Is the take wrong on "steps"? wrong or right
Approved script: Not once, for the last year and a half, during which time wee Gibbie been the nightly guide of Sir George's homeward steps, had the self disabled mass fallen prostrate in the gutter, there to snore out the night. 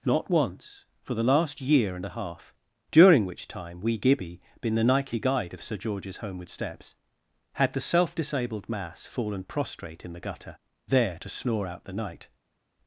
right